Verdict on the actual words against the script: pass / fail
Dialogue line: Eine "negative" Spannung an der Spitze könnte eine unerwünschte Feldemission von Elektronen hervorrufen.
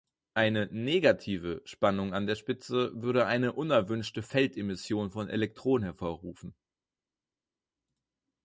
fail